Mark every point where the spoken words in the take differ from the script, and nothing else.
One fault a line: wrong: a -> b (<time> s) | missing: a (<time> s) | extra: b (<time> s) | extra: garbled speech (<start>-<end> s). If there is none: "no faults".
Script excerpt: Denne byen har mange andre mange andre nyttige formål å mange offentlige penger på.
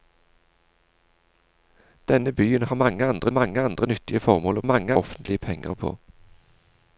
no faults